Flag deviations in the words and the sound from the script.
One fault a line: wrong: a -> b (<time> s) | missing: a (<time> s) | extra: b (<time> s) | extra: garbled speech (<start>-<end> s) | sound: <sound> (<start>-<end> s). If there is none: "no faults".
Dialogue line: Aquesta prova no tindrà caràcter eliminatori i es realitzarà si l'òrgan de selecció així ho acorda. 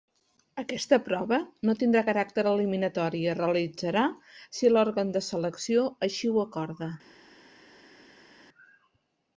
no faults